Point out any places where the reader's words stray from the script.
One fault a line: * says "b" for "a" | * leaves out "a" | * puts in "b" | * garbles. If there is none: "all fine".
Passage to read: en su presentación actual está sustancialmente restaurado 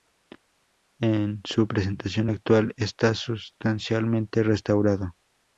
all fine